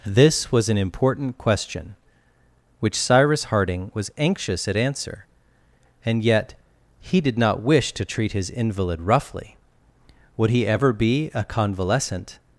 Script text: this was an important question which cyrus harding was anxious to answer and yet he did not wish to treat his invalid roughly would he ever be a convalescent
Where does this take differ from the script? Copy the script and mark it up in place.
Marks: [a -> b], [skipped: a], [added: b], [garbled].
this was an important question which cyrus harding was anxious [to -> at] answer and yet he did not wish to treat his invalid roughly would he ever be a convalescent